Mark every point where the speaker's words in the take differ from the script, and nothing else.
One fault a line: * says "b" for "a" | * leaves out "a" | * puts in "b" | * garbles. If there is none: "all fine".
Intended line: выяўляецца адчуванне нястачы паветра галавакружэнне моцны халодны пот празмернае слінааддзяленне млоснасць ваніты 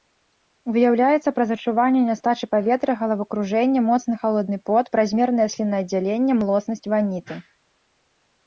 * puts in "праз"